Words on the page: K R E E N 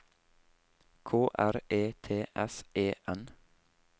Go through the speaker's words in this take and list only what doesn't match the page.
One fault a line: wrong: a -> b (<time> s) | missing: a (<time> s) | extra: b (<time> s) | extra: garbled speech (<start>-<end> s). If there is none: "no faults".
extra: T S (2.0 s)